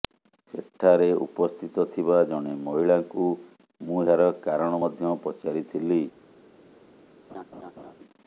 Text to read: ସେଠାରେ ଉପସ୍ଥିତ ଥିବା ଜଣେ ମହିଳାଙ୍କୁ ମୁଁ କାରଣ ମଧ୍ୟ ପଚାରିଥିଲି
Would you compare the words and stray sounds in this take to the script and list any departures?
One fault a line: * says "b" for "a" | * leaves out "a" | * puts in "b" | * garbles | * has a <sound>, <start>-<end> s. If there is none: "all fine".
* puts in "ଏହାର"
* has a laugh, 7.3-7.9 s